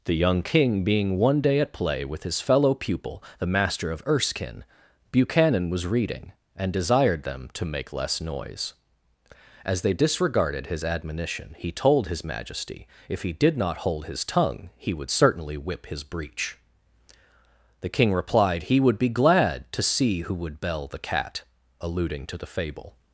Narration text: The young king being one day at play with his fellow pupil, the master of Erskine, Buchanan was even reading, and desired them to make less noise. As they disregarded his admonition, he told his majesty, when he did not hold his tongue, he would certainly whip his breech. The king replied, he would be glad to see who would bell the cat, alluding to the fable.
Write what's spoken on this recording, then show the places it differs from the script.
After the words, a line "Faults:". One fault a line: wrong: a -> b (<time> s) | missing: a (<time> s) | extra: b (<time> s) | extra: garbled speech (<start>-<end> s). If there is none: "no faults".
The young king being one day at play with his fellow pupil, the master of Erskine, Buchanan was reading, and desired them to make less noise. As they disregarded his admonition, he told his majesty, if he did not hold his tongue, he would certainly whip his breech. The king replied, he would be glad to see who would bell the cat, alluding to the fable.
Faults:
missing: even (5.8 s)
wrong: when -> if (13.1 s)